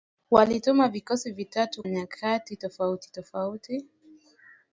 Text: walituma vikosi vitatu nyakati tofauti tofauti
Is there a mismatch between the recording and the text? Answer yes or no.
no